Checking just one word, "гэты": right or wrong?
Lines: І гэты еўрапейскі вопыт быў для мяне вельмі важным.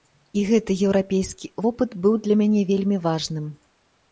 right